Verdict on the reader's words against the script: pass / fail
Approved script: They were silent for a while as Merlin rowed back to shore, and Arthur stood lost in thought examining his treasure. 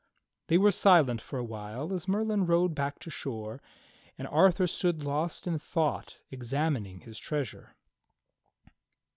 pass